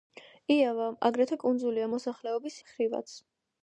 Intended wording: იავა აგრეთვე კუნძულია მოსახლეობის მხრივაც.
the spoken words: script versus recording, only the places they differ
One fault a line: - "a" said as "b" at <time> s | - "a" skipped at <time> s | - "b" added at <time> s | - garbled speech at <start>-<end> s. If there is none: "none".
none